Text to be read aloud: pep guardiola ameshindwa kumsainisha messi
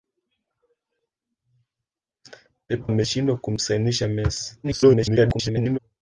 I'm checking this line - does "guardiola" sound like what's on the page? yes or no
no